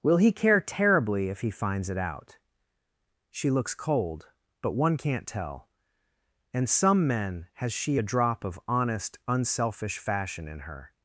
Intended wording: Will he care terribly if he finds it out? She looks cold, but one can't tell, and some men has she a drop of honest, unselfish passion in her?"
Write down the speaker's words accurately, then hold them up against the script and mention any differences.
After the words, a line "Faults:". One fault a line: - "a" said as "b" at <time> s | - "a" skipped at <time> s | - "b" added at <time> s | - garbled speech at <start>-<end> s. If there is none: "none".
Will he care terribly if he finds it out? She looks cold, but one can't tell, and some men has she a drop of honest, unselfish fashion in her?"
Faults:
- "passion" said as "fashion" at 10.0 s